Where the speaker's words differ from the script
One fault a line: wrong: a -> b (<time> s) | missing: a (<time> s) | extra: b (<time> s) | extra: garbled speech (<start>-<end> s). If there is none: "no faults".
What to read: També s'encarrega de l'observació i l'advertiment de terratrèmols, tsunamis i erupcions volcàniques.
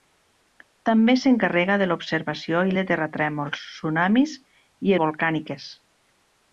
missing: l'advertiment (2.7 s)
missing: erupcions (5.0 s)